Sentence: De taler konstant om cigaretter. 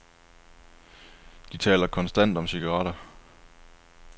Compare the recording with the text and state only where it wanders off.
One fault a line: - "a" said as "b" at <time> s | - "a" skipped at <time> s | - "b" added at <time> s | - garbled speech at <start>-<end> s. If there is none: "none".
none